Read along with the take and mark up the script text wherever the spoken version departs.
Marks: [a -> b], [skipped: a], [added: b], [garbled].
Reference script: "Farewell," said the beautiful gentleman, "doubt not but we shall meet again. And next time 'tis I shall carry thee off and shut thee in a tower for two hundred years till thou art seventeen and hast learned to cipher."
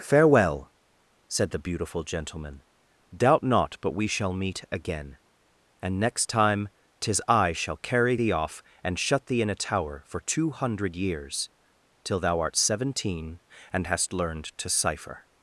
"Farewell," said the beautiful gentleman, "doubt not but we shall meet again. And next time 'tis I shall carry thee off and shut thee in a tower for two hundred years till thou art seventeen and hast learned to cipher."